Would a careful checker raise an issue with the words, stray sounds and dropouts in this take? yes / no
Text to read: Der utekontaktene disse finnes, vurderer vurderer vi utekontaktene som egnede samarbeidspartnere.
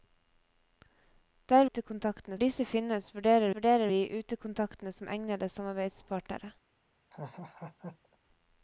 yes